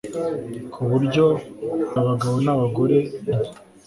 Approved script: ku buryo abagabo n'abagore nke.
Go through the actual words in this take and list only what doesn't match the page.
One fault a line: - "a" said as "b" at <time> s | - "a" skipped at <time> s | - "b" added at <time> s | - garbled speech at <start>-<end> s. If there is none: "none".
none